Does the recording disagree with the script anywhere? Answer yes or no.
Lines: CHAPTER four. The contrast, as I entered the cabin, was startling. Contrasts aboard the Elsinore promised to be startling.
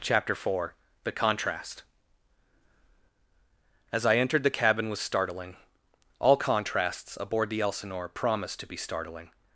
yes